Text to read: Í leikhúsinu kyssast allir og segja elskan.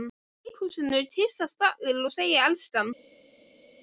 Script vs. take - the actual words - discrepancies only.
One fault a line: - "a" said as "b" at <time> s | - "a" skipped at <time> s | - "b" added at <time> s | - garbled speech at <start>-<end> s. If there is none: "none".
none